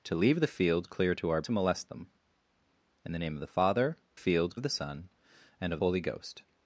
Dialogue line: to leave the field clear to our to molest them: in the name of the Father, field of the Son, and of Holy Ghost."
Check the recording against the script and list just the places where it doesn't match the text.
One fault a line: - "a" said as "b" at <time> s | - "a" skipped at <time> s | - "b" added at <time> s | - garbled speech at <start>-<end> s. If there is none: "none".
none